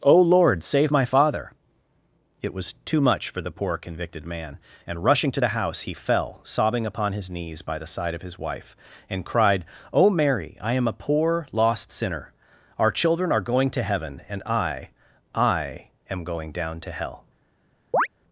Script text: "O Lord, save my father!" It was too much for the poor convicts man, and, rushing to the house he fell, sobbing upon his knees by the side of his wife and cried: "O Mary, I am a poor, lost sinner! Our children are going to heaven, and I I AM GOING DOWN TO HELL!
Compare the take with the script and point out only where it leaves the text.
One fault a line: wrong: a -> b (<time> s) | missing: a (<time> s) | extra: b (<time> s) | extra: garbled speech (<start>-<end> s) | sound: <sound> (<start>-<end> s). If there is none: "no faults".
wrong: convicts -> convicted (3.8 s)
sound: chirp (17.9-18.1 s)